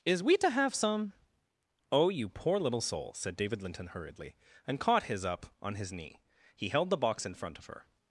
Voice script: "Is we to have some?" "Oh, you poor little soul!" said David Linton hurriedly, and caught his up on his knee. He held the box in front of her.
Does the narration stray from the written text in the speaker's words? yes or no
no